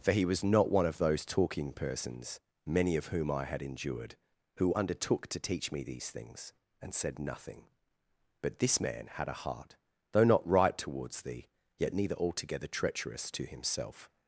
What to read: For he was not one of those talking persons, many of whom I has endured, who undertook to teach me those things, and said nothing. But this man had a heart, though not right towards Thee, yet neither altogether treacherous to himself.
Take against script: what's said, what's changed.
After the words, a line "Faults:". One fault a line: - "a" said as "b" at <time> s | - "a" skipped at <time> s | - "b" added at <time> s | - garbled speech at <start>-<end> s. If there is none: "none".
For he was not one of those talking persons, many of whom I had endured, who undertook to teach me these things, and said nothing. But this man had a heart, though not right towards Thee, yet neither altogether treacherous to himself.
Faults:
- "has" said as "had" at 3.5 s
- "those" said as "these" at 5.8 s